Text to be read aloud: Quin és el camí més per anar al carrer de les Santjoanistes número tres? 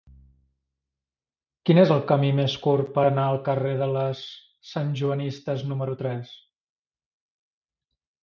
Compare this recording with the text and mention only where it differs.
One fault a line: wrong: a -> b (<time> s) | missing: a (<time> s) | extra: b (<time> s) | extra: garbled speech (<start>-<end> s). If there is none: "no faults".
extra: curt (2.6 s)